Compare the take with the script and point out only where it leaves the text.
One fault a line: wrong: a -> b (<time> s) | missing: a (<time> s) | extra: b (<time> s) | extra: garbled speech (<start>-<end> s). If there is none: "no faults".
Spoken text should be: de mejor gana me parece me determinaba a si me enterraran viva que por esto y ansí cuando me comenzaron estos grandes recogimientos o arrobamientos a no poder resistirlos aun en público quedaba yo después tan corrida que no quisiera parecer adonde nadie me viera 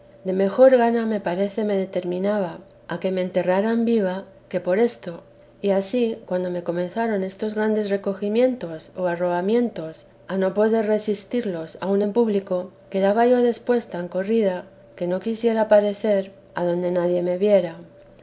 wrong: si -> que (3.0 s)